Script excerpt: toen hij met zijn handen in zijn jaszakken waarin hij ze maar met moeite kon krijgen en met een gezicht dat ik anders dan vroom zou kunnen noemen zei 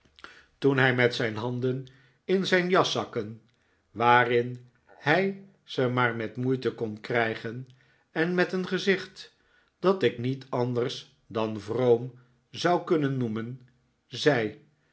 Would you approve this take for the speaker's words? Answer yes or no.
no